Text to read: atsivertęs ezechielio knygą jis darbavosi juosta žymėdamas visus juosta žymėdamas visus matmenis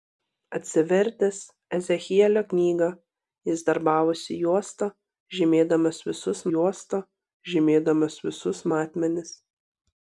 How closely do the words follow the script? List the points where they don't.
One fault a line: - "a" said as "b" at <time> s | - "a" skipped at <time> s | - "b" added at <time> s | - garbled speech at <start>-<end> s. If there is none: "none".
none